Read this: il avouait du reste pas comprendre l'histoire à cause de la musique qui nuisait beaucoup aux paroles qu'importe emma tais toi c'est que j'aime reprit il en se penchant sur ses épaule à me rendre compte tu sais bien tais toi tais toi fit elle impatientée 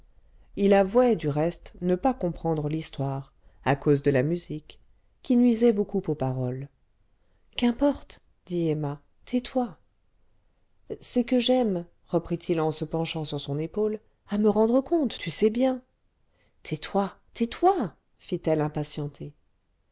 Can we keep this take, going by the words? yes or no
no